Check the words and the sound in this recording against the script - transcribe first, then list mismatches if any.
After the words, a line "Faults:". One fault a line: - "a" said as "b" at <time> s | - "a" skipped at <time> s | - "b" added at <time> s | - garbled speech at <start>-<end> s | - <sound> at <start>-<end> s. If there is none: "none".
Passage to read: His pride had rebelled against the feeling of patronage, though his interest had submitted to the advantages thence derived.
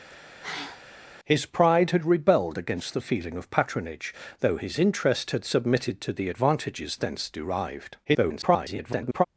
His pride had rebelled against the feeling of patronage, though his interest had submitted to the advantages thence derived. [garbled]
Faults:
- sigh at 0.1-0.8 s
- garbled speech at 8.0-9.3 s